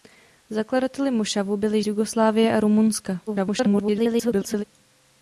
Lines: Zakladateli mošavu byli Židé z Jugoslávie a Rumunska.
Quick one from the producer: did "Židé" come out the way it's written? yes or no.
no